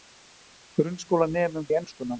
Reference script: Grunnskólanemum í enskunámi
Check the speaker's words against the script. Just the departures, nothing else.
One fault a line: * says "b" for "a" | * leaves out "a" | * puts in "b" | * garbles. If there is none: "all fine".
all fine